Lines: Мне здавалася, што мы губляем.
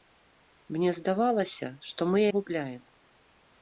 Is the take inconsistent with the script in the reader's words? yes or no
no